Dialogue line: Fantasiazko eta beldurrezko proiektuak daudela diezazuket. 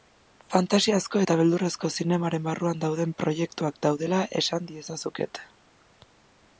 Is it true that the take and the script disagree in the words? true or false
true